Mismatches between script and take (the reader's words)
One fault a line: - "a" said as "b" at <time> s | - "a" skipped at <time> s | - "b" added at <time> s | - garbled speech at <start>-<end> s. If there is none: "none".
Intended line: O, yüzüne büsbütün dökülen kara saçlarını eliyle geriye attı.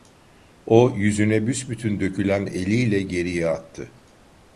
- "kara saçlarını" skipped at 2.5 s